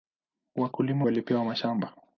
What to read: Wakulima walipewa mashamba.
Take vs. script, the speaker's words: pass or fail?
pass